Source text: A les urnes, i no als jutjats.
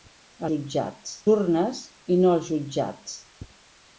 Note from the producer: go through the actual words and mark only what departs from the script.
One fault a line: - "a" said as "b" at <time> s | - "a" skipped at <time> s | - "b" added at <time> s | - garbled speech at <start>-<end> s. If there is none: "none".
- "les" said as "jutjats" at 0.5 s